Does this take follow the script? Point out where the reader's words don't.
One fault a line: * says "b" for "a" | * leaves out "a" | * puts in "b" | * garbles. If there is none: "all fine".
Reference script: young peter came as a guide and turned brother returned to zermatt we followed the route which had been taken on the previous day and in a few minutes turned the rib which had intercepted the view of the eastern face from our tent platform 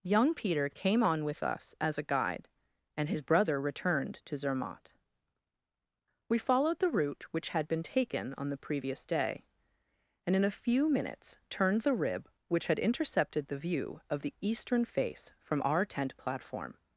* puts in "on with us"
* says "his" for "turned"